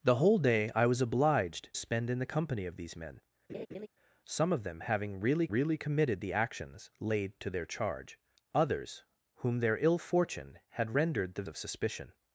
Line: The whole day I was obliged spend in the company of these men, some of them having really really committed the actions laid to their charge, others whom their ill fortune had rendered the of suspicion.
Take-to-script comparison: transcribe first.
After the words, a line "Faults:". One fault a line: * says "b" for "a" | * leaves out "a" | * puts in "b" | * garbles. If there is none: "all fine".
The whole day I was obliged spend in the company of these men, some of them having really really committed the actions laid to their charge, others whom their ill fortune had rendered the of suspicion.
Faults:
all fine